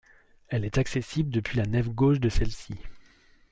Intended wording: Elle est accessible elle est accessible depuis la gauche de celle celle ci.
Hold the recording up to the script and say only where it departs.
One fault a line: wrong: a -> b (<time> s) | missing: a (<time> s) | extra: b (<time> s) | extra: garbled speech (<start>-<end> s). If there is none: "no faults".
missing: elle est accessible (1.3 s)
extra: nef (1.6 s)
missing: celle (2.5 s)